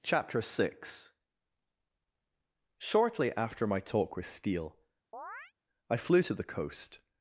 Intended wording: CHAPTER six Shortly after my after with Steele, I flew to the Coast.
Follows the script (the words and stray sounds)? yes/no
no